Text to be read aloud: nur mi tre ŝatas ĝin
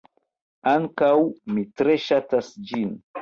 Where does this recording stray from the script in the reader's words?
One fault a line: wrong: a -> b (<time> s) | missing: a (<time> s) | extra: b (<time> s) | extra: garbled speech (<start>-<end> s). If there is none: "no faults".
wrong: nur -> ankaŭ (0.7 s)